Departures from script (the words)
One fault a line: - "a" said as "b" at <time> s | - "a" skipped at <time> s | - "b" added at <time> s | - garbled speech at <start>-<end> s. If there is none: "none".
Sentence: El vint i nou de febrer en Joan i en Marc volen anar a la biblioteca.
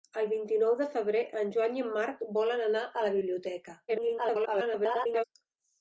- garbled speech at 3.9-5.2 s